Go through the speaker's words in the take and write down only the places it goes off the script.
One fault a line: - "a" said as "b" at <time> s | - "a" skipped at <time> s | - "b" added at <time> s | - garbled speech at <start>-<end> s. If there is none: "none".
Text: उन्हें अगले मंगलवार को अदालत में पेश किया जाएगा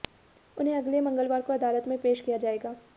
none